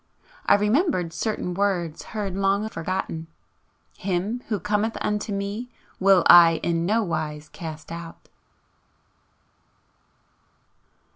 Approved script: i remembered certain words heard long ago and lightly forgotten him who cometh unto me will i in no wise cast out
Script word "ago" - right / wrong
wrong